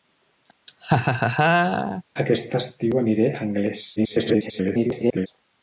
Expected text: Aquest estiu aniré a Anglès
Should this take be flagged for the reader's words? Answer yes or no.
yes